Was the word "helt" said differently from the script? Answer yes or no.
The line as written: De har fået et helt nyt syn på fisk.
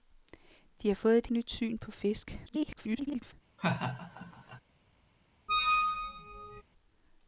yes